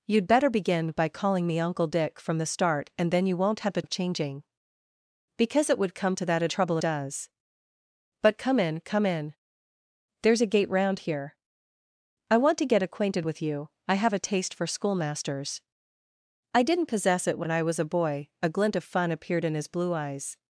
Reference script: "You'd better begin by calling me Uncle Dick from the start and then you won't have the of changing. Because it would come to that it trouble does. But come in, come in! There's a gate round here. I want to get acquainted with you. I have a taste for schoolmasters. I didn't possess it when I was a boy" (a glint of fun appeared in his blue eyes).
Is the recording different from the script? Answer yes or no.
no